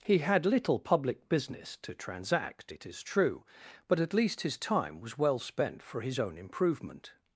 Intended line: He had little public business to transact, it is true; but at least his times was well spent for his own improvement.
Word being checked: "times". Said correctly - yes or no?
no